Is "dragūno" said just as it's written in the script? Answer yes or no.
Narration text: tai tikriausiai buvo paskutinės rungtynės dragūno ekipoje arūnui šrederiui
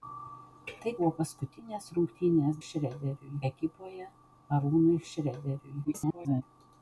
no